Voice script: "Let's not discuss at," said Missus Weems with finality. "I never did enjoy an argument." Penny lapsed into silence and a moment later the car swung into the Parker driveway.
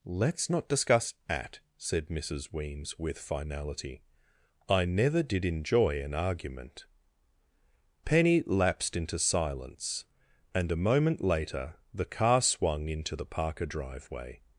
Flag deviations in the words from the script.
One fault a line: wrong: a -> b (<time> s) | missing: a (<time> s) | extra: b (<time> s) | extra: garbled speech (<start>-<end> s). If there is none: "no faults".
no faults